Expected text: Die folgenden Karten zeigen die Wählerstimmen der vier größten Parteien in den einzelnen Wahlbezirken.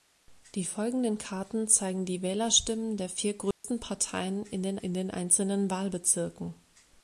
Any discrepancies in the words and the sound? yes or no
yes